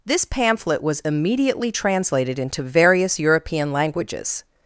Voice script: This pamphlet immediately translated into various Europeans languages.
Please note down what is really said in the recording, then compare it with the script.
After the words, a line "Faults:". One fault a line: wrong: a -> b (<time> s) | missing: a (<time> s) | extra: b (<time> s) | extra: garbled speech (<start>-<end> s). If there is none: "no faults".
This pamphlet was immediately translated into various European languages.
Faults:
extra: was (0.8 s)
wrong: Europeans -> European (3.2 s)